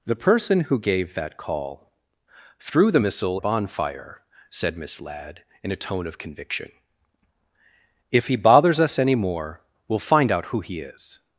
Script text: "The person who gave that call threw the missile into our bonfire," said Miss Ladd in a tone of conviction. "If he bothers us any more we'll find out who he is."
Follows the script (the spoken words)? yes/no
no